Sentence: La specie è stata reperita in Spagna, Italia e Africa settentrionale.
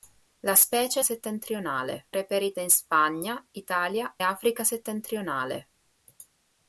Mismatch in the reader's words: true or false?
true